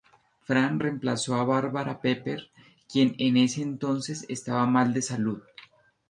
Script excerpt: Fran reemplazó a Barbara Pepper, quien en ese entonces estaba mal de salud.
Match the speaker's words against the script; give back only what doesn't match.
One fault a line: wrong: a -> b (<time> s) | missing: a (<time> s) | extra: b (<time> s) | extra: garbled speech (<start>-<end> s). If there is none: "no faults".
no faults